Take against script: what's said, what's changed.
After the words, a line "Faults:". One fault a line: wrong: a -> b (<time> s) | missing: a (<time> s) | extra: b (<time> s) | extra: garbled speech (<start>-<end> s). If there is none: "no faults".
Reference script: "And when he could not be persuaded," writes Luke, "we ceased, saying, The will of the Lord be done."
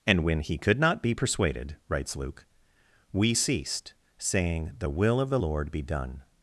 "And when he could not be persuaded," writes Luke, "we ceased, saying, The will of the Lord be done."
Faults:
no faults